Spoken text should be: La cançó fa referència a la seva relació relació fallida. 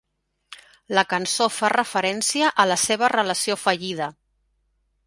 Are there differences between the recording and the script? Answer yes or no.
yes